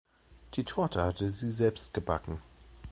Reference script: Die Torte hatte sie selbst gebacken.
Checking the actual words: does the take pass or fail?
pass